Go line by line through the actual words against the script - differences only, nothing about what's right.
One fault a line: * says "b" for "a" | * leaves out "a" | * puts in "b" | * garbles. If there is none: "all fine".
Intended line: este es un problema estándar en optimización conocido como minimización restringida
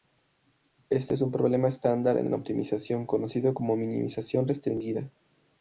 * puts in "en"